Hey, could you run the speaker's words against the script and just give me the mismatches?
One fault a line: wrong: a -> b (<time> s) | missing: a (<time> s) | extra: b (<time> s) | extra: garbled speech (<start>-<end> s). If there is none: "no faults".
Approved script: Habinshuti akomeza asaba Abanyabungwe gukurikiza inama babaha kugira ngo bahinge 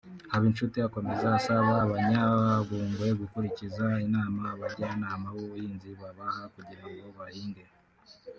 extra: abajyanama b'ubuhinzi (4.5 s)